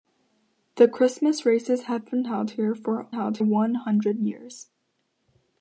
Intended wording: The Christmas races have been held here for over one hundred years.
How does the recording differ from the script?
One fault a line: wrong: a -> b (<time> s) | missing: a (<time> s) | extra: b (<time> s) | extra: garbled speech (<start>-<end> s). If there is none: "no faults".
wrong: over -> held (3.1 s)